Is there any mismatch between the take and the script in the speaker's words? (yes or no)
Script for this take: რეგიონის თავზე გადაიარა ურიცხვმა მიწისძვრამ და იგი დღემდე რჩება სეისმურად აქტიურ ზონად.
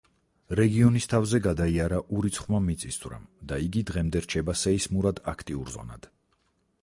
no